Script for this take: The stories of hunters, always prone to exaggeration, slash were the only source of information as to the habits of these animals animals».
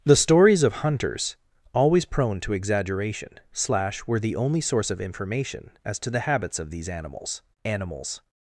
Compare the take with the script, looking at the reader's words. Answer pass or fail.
pass